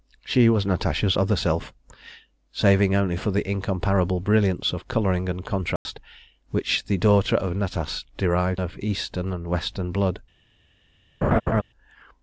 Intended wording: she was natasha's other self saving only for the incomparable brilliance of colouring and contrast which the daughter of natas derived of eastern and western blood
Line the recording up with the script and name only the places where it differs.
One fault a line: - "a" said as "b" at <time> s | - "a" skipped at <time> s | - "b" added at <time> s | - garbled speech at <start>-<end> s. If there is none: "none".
none